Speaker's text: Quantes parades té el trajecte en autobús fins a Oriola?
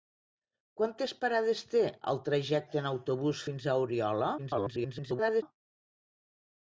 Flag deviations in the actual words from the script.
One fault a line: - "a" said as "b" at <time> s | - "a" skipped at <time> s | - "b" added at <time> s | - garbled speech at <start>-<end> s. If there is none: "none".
- garbled speech at 4.4-5.4 s